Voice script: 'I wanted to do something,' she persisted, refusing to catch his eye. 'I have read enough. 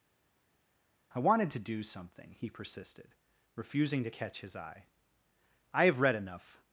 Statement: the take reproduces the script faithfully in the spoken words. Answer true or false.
false